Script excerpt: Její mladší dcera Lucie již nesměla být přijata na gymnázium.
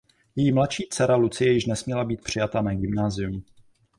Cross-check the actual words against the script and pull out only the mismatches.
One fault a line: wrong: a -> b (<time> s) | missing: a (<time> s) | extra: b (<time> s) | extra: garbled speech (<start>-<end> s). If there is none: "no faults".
no faults